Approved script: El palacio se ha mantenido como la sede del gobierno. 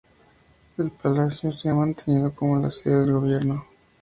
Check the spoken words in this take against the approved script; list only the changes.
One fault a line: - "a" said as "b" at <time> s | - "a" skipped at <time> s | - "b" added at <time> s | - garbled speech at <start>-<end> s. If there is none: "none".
none